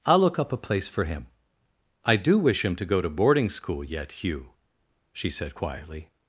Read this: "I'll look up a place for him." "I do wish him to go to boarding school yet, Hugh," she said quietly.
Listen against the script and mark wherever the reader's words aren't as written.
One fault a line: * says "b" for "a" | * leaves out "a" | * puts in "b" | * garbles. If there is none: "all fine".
all fine